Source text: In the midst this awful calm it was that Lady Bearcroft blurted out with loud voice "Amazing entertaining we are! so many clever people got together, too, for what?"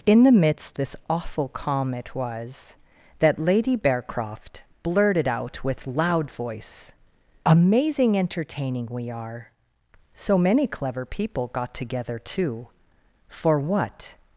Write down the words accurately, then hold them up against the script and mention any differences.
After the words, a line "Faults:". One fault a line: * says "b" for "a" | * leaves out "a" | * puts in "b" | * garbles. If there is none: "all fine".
In the midst this awful calm it was that Lady Bearcroft blurted out with loud voice "Amazing entertaining we are! so many clever people got together, too, for what?"
Faults:
all fine